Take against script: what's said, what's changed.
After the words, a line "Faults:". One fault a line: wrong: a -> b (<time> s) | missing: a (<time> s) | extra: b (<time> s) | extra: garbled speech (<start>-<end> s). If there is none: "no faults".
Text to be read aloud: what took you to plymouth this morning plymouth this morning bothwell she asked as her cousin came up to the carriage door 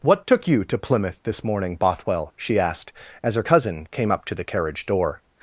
what took you to plymouth this morning bothwell she asked as her cousin came up to the carriage door
Faults:
missing: plymouth this morning (1.8 s)